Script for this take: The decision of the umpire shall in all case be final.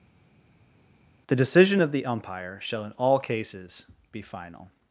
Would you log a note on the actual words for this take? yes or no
yes